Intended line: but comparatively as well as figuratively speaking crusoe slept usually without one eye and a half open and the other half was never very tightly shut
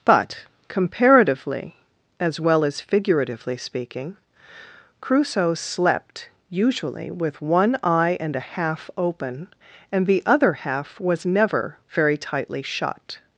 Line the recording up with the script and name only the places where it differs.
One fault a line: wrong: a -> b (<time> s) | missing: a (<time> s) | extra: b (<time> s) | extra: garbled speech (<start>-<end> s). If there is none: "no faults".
wrong: without -> with (7.1 s)